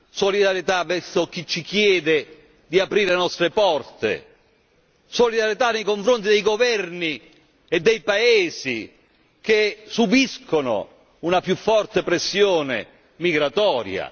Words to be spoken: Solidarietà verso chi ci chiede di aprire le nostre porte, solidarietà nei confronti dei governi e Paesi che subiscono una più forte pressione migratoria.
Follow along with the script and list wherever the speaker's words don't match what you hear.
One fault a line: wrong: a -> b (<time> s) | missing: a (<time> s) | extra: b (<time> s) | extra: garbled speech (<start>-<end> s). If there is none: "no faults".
extra: dei (7.8 s)